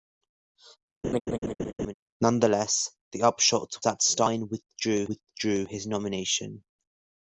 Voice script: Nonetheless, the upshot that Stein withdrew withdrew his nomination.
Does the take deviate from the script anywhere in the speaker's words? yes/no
no